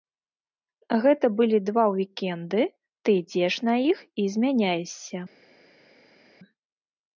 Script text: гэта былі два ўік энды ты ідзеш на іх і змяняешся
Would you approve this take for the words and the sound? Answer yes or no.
yes